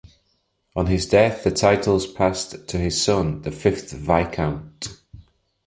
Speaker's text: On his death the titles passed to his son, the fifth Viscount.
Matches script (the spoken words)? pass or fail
pass